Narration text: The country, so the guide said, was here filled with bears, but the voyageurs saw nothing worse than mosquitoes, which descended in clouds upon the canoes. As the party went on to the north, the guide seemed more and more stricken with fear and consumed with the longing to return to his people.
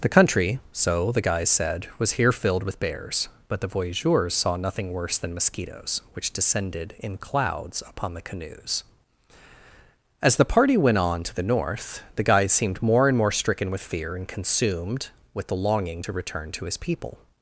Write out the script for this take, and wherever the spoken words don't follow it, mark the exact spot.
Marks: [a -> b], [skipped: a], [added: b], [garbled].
The country, so the [guide -> guys] said, was here filled with bears, but the voyageurs saw nothing worse than mosquitoes, which descended in clouds upon the canoes. As the party went on to the north, the guide seemed more and more stricken with fear and consumed with the longing to return to his people.